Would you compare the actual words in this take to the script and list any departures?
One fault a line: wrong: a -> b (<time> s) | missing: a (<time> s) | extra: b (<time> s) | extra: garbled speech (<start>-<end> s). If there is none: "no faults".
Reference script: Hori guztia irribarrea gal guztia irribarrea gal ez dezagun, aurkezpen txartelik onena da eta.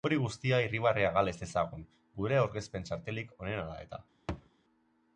missing: guztia irribarrea gal (1.3 s)
extra: gure (2.2 s)